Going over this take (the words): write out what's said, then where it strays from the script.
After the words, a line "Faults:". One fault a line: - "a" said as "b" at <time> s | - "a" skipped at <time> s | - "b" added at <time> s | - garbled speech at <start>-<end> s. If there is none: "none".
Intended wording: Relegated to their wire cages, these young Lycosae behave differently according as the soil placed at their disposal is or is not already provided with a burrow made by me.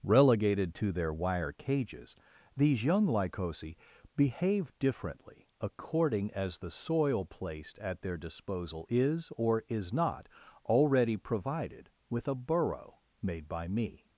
Relegated to their wire cages, these young Lycosae behave differently according as the soil placed at their disposal is or is not already provided with a burrow made by me.
Faults:
none